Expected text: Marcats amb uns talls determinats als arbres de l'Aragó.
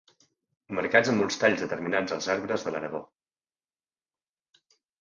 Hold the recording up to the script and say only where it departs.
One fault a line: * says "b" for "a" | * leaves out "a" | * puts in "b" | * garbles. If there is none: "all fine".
all fine